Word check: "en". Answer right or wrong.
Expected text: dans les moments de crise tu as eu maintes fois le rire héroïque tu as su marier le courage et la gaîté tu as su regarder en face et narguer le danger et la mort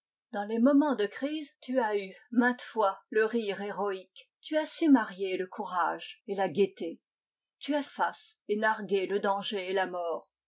wrong